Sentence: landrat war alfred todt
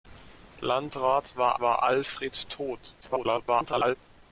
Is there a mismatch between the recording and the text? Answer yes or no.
yes